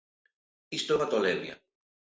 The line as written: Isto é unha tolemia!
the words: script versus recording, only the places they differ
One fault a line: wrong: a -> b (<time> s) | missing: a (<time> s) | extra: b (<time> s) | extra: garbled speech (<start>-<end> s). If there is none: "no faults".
no faults